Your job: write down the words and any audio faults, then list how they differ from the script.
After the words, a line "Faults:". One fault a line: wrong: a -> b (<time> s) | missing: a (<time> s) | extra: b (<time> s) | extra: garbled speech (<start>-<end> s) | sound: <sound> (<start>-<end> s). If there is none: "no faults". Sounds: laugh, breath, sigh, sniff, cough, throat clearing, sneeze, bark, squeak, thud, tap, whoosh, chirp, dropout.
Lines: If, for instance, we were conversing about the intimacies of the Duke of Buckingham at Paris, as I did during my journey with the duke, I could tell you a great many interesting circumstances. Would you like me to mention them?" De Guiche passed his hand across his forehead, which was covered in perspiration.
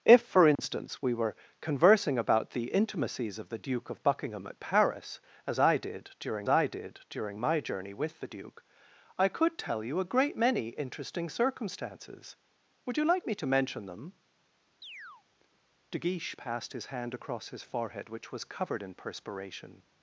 If, for instance, we were conversing about the intimacies of the Duke of Buckingham at Paris, as I did during I did during my journey with the duke, I could tell you a great many interesting circumstances. Would you like me to mention them?" De Guiche passed his hand across his forehead, which was covered in perspiration.
Faults:
sound: dropout (0.5-0.6 s)
extra: I did during (6.5 s)
sound: chirp (14.8-15.2 s)